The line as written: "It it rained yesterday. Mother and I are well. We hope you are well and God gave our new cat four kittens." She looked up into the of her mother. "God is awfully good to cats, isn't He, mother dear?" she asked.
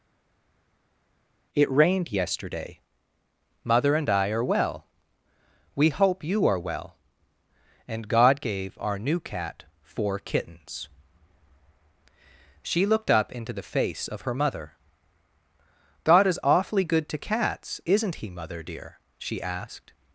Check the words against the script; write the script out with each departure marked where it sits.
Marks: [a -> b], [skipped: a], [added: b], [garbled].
"It [skipped: it] rained yesterday. Mother and I are well. We hope you are well and God gave our new cat four kittens." She looked up into the [added: face] of her mother. "God is awfully good to cats, isn't He, mother dear?" she asked.